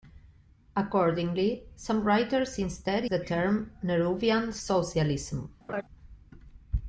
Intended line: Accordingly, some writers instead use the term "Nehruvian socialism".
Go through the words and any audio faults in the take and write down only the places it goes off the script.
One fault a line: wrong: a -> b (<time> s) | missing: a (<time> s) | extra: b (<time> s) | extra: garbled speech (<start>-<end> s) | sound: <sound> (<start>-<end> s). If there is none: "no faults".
missing: use (3.1 s)
sound: laugh (5.7-5.8 s)